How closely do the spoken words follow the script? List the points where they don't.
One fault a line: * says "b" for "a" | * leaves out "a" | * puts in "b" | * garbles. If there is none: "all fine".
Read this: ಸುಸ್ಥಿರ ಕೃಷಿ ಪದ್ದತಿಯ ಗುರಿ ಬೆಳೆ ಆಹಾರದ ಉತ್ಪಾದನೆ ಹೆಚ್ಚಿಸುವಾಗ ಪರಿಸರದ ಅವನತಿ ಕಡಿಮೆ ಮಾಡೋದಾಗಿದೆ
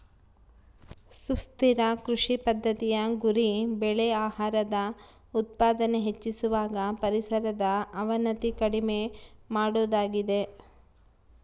all fine